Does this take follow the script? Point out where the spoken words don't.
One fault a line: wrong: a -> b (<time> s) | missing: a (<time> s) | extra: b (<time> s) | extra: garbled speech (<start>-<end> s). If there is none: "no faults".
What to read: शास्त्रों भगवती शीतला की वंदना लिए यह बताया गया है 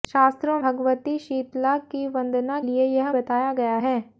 no faults